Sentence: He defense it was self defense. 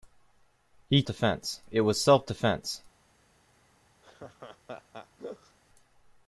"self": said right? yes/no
yes